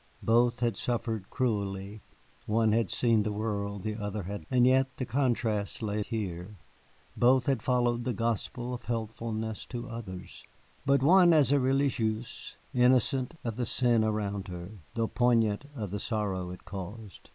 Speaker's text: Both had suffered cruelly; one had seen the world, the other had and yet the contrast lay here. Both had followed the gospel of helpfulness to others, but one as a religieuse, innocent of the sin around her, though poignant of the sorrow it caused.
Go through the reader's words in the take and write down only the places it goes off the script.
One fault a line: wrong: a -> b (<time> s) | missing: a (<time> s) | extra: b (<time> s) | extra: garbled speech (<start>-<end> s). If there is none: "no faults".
no faults